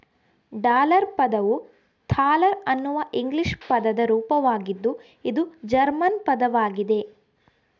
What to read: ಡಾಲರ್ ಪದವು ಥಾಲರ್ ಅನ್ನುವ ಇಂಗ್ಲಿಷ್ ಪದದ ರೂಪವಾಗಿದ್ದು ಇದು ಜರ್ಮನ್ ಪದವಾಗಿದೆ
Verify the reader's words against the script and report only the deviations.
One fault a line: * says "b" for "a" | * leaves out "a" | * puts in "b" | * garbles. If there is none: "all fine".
all fine